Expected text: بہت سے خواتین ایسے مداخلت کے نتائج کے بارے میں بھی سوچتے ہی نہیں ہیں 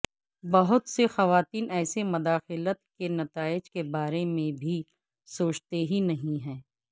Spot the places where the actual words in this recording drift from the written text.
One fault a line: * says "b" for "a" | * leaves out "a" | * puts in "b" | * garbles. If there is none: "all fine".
all fine